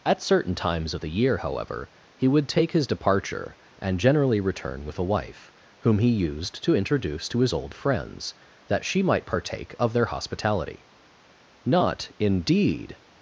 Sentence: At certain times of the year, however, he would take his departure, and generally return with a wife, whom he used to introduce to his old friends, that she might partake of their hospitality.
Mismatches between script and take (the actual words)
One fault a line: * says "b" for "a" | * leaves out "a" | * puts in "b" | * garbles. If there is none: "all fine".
* puts in "Not indeed"